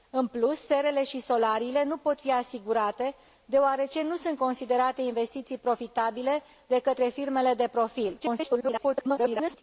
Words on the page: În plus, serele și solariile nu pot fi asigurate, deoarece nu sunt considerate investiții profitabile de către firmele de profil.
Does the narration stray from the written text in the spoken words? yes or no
yes